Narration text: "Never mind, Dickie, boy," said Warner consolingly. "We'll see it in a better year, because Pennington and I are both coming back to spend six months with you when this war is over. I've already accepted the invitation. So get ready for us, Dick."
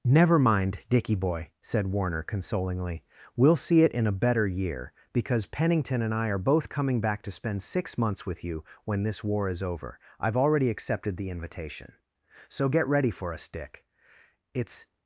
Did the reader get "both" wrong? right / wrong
right